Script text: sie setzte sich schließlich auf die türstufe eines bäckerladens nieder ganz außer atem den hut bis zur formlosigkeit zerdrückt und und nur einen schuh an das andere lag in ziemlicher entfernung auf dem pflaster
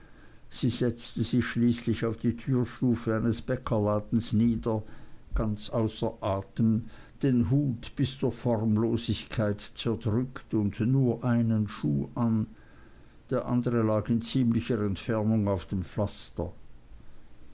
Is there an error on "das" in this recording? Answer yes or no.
yes